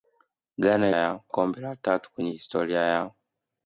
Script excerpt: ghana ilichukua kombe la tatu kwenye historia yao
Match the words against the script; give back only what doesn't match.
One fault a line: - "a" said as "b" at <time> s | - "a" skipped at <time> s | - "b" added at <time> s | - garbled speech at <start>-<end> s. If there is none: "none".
- "ilichukua" said as "yao" at 0.9 s